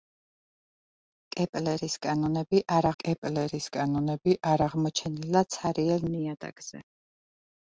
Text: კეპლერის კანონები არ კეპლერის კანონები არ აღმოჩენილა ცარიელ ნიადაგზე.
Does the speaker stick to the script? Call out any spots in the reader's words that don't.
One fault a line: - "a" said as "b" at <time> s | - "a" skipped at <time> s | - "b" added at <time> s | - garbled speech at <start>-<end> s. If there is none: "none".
none